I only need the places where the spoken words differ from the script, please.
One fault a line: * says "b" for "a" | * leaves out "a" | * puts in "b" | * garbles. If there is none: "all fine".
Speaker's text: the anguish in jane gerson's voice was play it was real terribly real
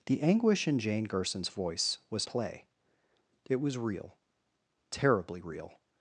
all fine